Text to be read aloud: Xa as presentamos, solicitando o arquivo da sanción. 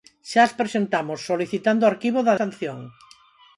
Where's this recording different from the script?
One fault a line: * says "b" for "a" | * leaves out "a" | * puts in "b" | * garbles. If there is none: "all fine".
all fine